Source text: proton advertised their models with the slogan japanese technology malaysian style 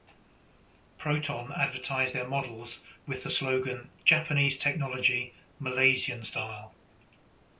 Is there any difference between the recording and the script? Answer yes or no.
no